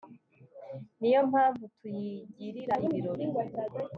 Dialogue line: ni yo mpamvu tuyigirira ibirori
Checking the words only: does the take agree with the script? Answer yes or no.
yes